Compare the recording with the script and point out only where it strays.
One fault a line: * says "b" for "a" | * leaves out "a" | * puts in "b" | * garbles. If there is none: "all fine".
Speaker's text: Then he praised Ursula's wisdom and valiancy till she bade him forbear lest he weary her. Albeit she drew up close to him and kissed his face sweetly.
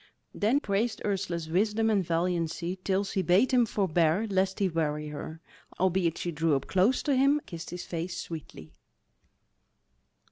* leaves out "he"
* leaves out "and"